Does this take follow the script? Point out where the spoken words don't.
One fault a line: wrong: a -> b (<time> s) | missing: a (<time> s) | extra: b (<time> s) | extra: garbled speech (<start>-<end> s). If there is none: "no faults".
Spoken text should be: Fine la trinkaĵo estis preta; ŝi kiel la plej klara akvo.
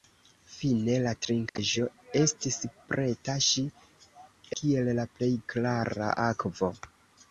no faults